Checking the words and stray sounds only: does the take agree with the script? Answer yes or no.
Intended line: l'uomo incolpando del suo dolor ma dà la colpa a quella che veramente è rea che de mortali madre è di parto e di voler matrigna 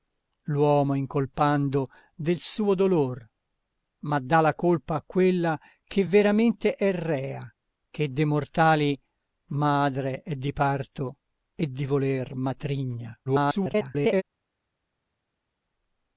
no